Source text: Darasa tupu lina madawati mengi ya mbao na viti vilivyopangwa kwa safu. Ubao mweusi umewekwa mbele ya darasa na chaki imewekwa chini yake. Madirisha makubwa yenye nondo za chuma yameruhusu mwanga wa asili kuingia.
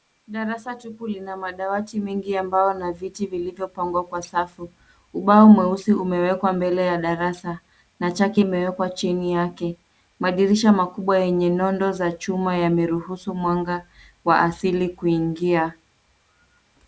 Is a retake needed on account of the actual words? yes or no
no